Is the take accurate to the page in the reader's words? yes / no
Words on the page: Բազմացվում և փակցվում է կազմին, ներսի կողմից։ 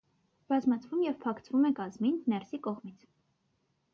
yes